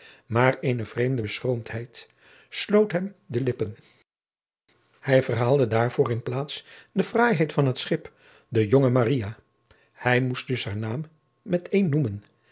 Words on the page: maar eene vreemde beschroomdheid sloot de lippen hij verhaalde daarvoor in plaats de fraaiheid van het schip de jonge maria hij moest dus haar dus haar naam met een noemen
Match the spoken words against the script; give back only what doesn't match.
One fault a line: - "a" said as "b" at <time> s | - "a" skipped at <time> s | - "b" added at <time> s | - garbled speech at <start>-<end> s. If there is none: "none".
- "hem" added at 2.9 s
- "dus haar" skipped at 10.8 s